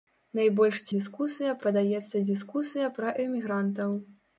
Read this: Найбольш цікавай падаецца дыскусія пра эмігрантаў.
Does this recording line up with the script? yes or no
no